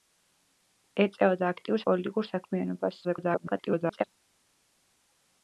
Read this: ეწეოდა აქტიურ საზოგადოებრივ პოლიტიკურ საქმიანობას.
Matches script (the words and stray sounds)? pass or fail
fail